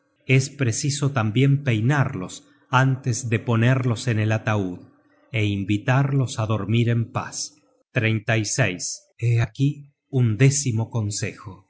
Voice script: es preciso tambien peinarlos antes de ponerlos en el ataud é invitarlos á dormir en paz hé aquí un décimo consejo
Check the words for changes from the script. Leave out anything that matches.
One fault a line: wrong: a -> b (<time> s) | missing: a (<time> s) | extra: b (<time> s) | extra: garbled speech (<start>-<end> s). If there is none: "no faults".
no faults